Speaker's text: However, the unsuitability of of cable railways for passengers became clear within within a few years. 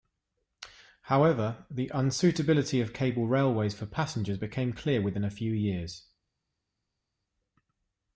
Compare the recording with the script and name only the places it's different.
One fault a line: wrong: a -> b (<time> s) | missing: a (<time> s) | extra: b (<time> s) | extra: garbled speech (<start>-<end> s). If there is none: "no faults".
missing: of (2.9 s)
missing: within (5.2 s)